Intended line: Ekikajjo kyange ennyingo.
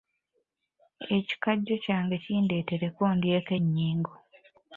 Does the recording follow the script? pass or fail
fail